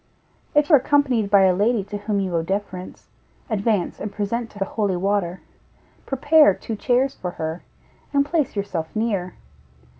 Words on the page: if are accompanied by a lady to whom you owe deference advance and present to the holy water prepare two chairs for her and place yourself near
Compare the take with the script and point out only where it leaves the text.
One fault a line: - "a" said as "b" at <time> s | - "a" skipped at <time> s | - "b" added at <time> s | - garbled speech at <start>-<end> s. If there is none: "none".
none